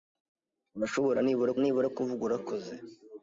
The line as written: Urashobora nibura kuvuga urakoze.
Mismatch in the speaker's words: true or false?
true